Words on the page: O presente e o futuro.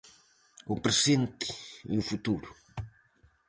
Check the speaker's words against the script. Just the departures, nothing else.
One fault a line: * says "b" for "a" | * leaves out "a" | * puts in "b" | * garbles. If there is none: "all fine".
all fine